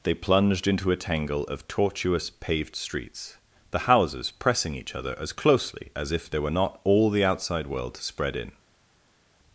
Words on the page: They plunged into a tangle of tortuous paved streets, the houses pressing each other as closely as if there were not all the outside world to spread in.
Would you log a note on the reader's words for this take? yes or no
no